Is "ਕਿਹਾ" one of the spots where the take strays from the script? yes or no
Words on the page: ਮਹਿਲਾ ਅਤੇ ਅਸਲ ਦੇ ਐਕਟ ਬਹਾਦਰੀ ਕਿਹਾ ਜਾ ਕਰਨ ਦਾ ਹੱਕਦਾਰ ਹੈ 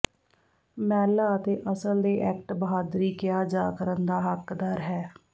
no